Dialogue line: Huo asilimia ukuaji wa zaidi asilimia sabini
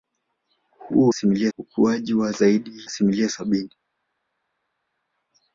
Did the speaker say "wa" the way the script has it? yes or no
yes